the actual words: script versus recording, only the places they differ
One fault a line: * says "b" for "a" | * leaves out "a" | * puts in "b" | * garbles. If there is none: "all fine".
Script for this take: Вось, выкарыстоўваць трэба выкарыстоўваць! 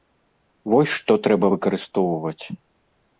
* says "што" for "выкарыстоўваць"